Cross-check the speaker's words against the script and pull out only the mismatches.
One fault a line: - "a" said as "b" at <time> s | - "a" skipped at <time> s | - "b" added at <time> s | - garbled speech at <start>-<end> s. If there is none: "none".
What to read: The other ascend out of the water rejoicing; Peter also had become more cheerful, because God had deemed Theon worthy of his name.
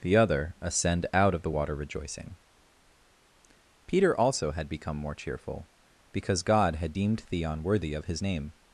none